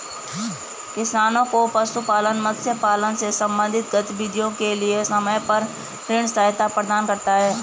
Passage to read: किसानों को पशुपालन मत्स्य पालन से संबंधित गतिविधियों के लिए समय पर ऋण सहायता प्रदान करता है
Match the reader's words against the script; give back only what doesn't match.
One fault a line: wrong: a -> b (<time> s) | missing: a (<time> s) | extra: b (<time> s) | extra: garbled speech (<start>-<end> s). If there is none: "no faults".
no faults